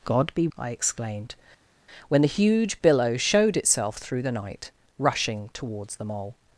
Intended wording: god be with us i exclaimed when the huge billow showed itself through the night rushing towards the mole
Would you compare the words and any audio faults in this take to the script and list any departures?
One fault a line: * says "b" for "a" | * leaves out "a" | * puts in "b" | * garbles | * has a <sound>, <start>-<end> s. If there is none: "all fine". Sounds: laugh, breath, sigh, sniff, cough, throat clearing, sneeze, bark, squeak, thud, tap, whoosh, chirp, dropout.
* leaves out "with us"